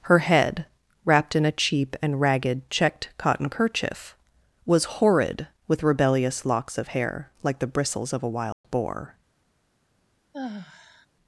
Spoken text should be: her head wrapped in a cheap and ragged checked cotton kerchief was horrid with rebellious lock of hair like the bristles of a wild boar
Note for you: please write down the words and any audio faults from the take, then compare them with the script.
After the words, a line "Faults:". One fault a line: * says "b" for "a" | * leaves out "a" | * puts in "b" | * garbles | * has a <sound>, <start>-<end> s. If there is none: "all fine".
her head wrapped in a cheap and ragged checked cotton kerchief was horrid with rebellious locks of hair like the bristles of a wild boar
Faults:
* says "locks" for "lock"
* has a dropout, 8.5-8.6 s
* has a sigh, 10.3-11.1 s